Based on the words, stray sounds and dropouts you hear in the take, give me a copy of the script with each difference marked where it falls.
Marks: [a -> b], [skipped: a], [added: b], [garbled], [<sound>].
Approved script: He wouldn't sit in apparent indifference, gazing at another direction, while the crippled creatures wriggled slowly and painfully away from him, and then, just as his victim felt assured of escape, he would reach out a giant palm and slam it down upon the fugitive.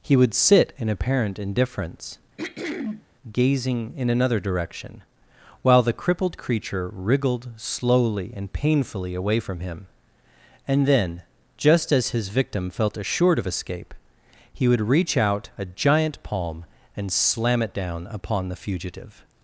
He [wouldn't -> would] sit in apparent indifference, [throat clearing] gazing [at -> in] another direction, while the crippled [creatures -> creature] wriggled slowly and painfully away from him, and then, just as his victim felt assured of escape, he would reach out a giant palm and slam it down upon the fugitive.